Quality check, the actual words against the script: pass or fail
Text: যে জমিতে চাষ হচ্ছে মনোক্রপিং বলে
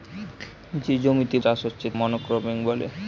pass